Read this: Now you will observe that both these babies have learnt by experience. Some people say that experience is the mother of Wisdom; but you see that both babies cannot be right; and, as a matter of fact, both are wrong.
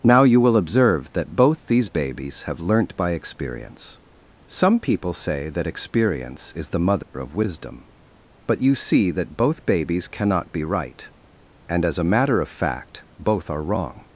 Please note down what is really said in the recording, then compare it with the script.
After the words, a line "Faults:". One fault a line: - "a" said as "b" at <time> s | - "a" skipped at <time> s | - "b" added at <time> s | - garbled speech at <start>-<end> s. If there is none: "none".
Now you will observe that both these babies have learnt by experience. Some people say that experience is the mother of Wisdom; but you see that both babies cannot be right; and, as a matter of fact, both are wrong.
Faults:
none